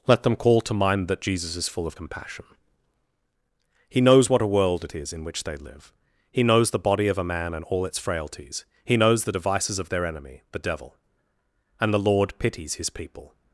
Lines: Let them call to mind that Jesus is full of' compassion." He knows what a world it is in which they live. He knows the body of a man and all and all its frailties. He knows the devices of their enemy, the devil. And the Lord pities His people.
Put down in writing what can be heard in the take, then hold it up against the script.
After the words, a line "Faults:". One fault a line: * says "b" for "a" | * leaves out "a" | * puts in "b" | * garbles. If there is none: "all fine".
Let them call to mind that Jesus is full of' compassion." He knows what a world it is in which they live. He knows the body of a man and all its frailties. He knows the devices of their enemy, the devil. And the Lord pities His people.
Faults:
* leaves out "and all"